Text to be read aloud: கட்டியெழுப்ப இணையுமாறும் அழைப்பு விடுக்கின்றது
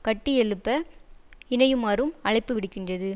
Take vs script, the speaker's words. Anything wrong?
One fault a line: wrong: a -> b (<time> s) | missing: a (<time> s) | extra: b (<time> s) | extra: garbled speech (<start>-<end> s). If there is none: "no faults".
no faults